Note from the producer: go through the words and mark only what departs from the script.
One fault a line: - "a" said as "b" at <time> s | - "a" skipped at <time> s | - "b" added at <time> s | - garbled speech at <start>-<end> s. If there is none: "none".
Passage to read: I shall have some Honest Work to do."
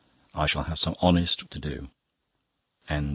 - "Work" skipped at 1.5 s